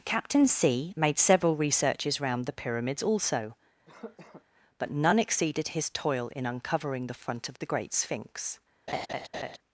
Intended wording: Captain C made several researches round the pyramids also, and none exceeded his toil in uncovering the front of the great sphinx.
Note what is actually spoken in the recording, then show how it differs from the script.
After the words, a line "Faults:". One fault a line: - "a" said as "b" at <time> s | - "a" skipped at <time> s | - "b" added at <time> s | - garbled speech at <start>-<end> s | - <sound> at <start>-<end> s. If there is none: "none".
Captain C made several researches round the pyramids also, but none exceeded his toil in uncovering the front of the great sphinx.
Faults:
- cough at 3.9-4.4 s
- "and" said as "but" at 4.8 s
- laugh at 8.9-9.6 s